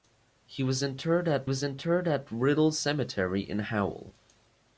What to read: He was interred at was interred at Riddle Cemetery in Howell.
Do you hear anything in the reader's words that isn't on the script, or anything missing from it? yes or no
no